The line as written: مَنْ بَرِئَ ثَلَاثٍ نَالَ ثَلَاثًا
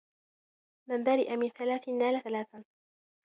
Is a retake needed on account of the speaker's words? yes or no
yes